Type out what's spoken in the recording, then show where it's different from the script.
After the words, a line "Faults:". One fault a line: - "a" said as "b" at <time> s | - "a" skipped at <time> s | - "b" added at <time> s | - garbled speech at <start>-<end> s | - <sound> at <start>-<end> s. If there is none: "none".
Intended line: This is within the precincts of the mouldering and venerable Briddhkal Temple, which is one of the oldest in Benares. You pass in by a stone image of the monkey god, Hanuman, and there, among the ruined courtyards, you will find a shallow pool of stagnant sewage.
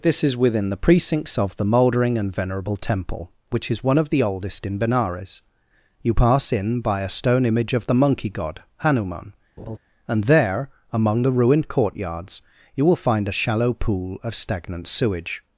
This is within the precincts of the mouldering and venerable Temple, which is one of the oldest in Benares. You pass in by a stone image of the monkey god, Hanuman, and there, among the ruined courtyards, you will find a shallow pool of stagnant sewage.
Faults:
- "Briddhkal" skipped at 2.8 s
- laugh at 9.6-9.8 s